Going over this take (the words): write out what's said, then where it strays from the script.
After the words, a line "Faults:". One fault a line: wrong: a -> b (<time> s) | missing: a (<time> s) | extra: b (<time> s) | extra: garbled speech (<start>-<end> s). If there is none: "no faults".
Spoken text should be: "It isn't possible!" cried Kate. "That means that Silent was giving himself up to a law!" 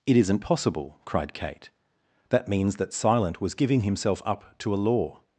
"It isn't possible!" cried Kate. "That means that Silent was giving himself up to a law!"
Faults:
no faults